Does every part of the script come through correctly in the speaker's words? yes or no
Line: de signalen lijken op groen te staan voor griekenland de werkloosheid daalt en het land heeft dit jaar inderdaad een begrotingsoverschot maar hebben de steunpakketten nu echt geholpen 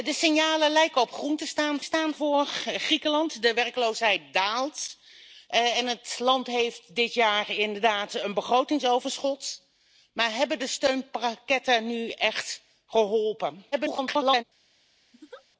no